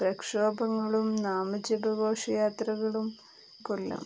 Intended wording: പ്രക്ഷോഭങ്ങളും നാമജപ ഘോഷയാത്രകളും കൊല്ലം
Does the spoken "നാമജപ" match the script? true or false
true